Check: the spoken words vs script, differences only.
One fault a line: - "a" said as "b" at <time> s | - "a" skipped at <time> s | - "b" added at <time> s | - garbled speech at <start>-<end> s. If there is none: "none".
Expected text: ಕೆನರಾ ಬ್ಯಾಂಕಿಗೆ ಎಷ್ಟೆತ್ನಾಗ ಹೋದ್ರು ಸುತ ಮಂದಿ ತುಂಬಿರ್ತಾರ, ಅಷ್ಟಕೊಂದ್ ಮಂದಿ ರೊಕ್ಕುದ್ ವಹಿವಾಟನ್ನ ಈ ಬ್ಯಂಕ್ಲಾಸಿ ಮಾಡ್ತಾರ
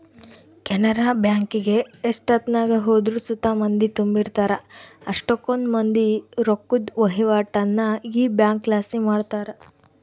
none